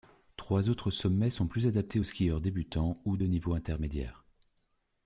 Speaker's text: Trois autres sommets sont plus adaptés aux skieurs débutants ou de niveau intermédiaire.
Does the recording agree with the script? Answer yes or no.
yes